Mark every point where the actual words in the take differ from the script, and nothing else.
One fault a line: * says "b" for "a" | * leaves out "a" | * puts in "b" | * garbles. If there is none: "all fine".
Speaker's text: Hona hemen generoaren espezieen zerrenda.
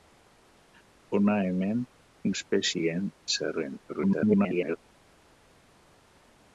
* leaves out "generoaren"
* garbles